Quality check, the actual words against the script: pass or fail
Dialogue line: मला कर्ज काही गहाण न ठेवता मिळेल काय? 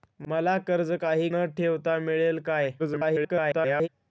fail